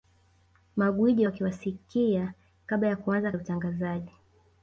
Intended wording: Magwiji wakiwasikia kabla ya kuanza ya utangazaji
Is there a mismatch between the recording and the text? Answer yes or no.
no